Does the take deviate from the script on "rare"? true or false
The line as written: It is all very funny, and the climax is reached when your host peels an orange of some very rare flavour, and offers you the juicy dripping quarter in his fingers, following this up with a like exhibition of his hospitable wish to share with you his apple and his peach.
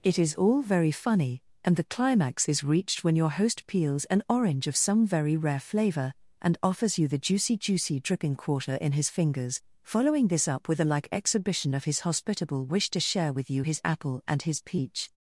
false